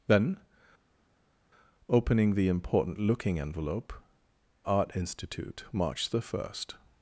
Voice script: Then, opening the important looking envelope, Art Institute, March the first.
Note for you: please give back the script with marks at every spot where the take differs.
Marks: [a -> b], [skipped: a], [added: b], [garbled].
Then, opening the important looking envelope, Art Institute, March the first.